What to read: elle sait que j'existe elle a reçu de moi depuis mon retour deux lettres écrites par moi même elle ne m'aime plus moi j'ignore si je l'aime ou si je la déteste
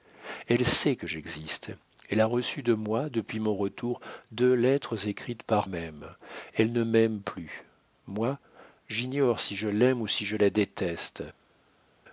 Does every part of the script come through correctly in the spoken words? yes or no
no